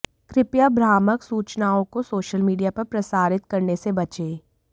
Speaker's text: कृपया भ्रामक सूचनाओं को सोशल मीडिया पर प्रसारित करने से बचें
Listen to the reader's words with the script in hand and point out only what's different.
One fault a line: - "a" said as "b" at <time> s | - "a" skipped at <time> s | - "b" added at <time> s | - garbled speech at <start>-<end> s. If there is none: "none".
none